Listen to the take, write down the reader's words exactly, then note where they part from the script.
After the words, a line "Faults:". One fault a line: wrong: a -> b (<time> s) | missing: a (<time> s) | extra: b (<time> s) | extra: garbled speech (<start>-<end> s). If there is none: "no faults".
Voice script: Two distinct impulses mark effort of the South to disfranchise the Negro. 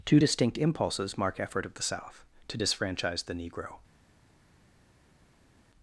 Two distinct impulses mark effort of the South to disfranchise the Negro.
Faults:
no faults